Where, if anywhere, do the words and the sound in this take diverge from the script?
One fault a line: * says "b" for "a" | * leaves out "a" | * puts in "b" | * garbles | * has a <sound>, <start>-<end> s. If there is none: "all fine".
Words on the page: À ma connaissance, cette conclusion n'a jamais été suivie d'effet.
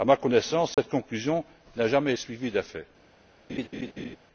* has a dropout, 0.7-0.8 s
* leaves out "été"
* has a laugh, 3.5-4.2 s